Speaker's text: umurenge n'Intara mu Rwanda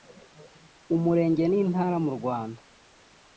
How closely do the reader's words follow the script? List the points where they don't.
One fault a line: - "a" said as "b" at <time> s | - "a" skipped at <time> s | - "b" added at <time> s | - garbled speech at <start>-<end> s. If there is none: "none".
none